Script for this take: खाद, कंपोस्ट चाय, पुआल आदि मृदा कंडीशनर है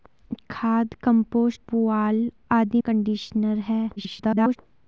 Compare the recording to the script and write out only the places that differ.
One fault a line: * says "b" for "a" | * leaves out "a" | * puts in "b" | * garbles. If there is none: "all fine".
* leaves out "चाय"
* leaves out "मृदा"
* garbles